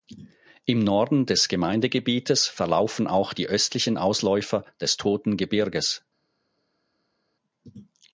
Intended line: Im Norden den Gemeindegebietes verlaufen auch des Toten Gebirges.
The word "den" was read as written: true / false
false